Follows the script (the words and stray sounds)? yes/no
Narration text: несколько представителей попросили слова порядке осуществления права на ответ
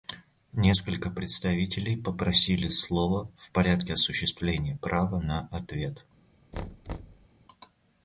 no